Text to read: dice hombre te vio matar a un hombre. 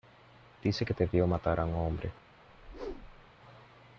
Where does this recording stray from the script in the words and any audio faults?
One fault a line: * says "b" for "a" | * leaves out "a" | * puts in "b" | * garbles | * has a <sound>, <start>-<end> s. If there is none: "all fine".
* says "que" for "hombre"
* has a whoosh, 2.5-3.3 s